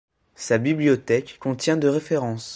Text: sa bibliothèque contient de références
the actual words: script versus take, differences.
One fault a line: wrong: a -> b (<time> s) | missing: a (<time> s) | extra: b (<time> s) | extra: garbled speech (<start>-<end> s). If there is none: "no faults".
no faults